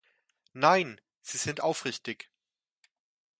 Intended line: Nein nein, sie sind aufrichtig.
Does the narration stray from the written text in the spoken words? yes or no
yes